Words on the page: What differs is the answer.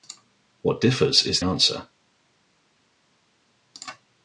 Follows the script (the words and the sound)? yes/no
no